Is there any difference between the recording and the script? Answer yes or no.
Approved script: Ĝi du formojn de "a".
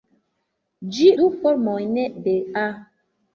no